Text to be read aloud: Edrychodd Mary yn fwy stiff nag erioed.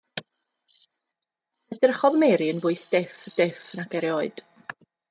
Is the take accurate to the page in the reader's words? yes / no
no